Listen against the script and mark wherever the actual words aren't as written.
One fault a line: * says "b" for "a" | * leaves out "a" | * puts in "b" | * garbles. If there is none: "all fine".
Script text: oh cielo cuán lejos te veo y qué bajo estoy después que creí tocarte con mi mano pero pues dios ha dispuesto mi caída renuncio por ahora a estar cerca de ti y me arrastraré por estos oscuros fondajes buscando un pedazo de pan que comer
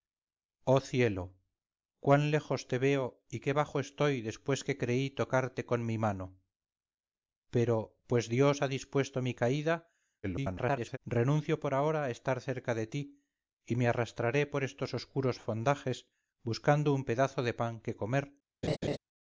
* garbles